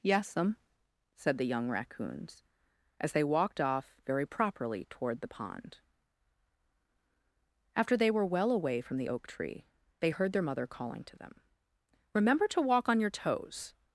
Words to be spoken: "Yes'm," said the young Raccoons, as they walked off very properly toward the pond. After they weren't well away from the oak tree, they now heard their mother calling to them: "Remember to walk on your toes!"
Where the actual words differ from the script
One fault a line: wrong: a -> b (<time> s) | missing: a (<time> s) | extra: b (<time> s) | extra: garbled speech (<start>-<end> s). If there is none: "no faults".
wrong: weren't -> were (8.1 s)
missing: now (10.1 s)